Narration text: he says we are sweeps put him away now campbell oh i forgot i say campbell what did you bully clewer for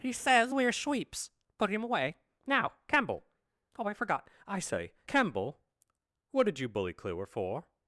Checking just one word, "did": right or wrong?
right